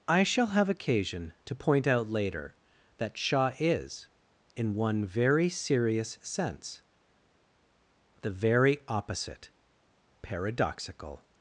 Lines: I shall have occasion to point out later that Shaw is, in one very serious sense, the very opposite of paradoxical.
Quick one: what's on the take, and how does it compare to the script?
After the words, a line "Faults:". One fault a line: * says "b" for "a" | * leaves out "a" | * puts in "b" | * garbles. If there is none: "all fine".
I shall have occasion to point out later that Shaw is, in one very serious sense, the very opposite paradoxical.
Faults:
* leaves out "of"